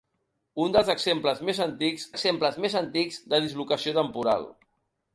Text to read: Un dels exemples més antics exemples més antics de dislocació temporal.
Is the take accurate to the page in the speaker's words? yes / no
yes